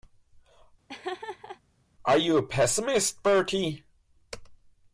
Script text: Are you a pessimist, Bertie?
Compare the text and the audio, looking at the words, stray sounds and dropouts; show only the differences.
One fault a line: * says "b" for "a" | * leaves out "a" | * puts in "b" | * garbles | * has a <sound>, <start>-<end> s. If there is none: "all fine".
* has a laugh, 0.9-1.6 s